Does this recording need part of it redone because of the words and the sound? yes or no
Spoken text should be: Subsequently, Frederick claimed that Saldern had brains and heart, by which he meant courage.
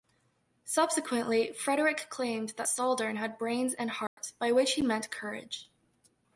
yes